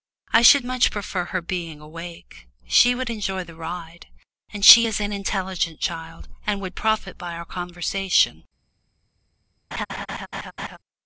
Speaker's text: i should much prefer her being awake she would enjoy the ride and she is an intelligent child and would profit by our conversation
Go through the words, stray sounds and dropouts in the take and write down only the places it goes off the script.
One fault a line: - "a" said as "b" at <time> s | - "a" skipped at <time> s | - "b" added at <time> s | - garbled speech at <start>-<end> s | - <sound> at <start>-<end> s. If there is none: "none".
- laugh at 9.7-10.8 s